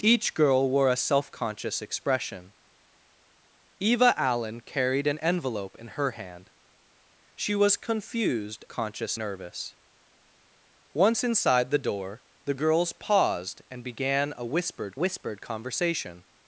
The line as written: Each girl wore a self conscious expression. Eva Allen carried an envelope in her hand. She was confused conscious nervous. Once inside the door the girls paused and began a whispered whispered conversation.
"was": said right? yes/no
yes